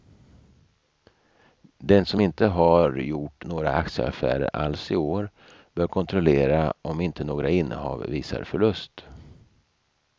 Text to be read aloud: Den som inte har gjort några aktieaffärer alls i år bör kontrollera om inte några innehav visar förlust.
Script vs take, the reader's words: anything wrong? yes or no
no